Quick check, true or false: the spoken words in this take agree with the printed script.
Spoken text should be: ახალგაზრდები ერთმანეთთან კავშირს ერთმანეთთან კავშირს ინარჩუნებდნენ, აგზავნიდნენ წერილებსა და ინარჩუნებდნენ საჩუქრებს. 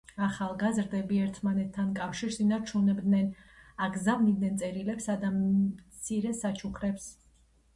false